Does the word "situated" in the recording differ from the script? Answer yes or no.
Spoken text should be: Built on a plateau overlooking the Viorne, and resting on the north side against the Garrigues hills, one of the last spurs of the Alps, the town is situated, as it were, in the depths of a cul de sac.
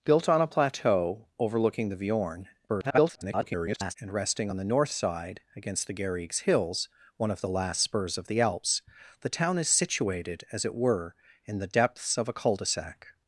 no